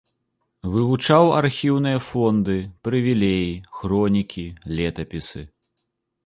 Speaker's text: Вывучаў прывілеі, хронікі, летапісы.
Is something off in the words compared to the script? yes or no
yes